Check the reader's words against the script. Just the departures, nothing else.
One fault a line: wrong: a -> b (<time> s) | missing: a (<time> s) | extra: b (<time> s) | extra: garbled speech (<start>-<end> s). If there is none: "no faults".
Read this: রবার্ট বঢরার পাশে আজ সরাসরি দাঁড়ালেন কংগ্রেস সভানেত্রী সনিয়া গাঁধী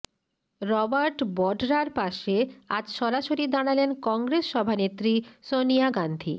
no faults